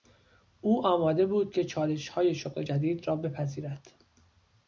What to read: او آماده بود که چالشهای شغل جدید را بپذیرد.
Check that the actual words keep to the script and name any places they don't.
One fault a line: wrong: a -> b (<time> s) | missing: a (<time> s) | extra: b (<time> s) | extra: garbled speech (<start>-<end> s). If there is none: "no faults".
no faults